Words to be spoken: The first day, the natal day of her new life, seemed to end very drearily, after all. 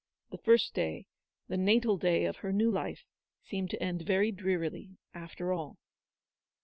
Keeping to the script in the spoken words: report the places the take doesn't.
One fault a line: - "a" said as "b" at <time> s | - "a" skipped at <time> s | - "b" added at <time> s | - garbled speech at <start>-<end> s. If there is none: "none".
none